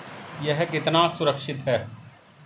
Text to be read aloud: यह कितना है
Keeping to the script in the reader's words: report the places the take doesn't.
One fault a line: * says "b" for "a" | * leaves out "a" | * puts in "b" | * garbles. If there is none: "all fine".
* puts in "सुरक्षित"